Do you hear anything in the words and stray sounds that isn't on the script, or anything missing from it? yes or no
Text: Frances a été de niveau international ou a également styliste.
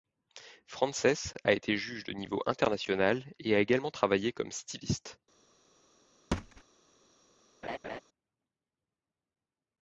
yes